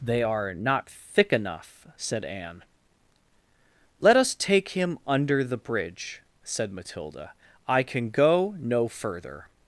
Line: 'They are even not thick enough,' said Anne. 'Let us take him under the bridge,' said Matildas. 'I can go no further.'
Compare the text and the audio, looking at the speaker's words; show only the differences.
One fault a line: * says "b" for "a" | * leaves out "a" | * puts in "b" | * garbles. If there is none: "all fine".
* leaves out "even"
* says "Matilda" for "Matildas"